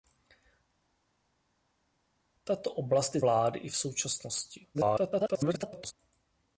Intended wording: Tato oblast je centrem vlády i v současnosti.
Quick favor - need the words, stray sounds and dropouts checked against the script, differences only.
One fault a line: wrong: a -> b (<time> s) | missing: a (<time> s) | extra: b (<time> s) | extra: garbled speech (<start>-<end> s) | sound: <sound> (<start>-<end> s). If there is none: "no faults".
missing: centrem (3.2 s)
extra: garbled speech (4.7-5.9 s)